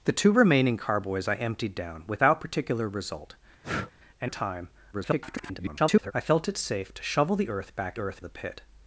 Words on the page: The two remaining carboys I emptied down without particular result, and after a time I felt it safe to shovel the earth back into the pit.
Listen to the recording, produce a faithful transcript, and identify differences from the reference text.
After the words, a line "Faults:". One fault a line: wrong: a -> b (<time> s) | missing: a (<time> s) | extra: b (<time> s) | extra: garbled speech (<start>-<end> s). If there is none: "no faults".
The two remaining carboys I emptied down without particular result, and a time [garbled] I felt it safe to shovel the earth back earth the pit.
Faults:
missing: after (4.3 s)
extra: garbled speech (4.9-6.1 s)
wrong: into -> earth (8.0 s)